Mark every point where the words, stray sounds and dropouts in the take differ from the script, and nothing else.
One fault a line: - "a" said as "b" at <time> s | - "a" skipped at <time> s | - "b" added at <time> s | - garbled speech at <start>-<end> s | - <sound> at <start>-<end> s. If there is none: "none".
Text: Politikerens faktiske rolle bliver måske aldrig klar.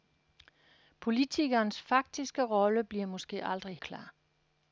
none